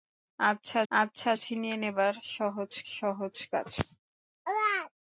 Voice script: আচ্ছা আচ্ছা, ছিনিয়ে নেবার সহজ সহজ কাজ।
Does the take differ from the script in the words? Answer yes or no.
no